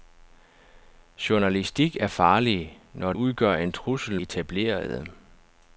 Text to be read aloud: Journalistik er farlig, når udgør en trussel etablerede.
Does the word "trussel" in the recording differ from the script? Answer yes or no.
no